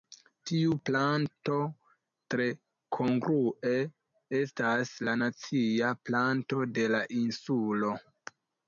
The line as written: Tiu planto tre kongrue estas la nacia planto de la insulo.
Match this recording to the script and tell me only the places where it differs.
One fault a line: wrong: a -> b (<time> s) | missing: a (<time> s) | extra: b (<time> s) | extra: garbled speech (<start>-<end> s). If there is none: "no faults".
no faults